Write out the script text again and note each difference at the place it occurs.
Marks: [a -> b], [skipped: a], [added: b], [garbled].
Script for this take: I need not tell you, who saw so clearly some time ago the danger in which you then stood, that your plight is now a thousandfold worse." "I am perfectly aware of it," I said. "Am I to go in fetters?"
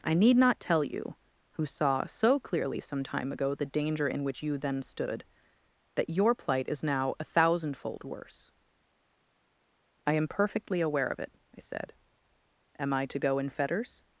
I need not tell you, who saw so clearly some time ago the danger in which you then stood, that your plight is now a thousandfold worse." "I am perfectly aware of it," I said. "Am I to go in fetters?"